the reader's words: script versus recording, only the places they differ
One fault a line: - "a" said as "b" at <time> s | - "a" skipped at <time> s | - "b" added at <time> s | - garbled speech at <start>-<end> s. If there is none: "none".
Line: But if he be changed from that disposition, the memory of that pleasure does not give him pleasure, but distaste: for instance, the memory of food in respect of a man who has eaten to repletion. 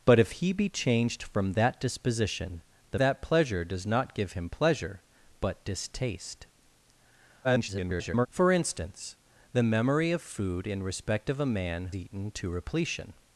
- "memory of" skipped at 3.0 s
- garbled speech at 7.4-8.3 s
- "who has" skipped at 11.9 s